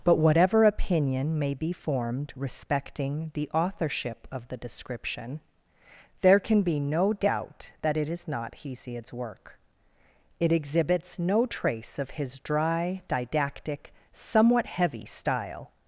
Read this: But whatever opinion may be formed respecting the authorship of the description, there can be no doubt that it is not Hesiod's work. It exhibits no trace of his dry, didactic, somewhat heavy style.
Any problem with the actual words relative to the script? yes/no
no